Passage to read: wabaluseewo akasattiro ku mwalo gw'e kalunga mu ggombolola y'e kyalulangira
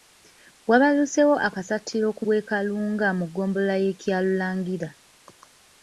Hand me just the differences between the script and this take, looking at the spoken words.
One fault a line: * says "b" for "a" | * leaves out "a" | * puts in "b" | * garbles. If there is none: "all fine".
* leaves out "mwalo"